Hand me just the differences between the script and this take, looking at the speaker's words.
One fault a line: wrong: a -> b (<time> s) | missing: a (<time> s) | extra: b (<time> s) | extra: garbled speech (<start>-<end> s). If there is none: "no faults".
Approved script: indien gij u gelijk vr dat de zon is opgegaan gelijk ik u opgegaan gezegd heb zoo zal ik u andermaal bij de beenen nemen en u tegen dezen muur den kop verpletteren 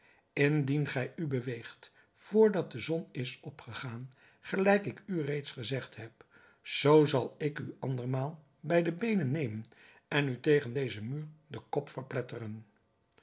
wrong: gelijk -> beweegt (1.3 s)
wrong: opgegaan -> reeds (5.2 s)